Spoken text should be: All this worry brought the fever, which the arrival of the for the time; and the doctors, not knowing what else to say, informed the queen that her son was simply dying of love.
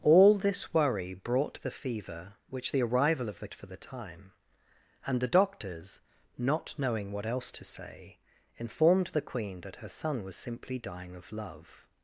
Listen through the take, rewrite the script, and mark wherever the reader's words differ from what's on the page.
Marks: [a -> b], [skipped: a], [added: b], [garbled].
All this worry brought the fever, which the arrival of the for the time; and the doctors, not knowing what else to say, informed the queen that her son was simply dying of love.